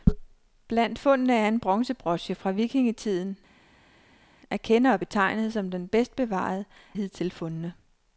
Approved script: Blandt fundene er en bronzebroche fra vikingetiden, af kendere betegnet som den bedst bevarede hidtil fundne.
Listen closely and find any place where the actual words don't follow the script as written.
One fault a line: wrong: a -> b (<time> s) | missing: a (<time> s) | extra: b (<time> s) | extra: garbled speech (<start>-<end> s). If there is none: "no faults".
no faults